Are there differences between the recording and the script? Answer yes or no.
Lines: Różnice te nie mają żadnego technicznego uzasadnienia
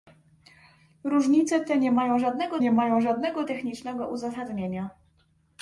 yes